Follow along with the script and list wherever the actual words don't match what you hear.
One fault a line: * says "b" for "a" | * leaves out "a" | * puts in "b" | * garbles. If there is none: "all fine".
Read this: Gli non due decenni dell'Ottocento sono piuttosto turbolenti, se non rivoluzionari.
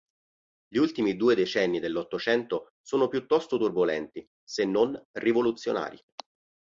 * says "ultimi" for "non"